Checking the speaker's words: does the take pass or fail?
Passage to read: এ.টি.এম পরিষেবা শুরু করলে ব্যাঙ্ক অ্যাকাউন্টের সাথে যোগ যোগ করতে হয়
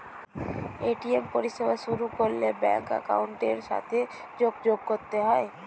pass